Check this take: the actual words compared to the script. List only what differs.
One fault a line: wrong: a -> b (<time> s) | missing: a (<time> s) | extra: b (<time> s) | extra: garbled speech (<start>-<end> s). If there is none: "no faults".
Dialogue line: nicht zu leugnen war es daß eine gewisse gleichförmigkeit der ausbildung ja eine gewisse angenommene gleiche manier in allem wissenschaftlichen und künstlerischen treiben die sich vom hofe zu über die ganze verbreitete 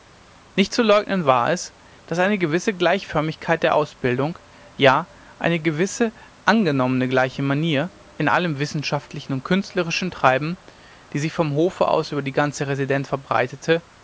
wrong: zu -> aus (11.9 s)
extra: residenz (12.7 s)